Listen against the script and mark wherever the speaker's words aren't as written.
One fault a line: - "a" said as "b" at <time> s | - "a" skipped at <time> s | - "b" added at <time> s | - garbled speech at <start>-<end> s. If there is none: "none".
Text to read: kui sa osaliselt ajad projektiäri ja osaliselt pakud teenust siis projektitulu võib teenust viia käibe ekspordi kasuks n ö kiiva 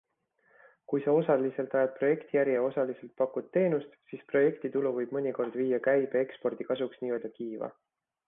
- "teenust" said as "mõnikord" at 5.2 s